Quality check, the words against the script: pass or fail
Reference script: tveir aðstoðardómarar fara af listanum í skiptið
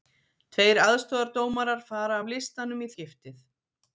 pass